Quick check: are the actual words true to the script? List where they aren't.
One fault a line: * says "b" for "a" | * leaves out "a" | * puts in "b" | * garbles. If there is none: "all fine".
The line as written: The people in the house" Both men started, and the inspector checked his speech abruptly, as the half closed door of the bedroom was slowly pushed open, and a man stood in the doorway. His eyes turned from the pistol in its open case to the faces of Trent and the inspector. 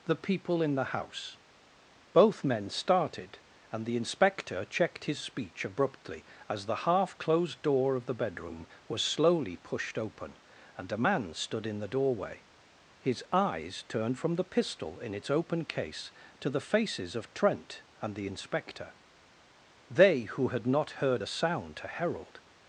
* puts in "They who had not heard a sound to herald"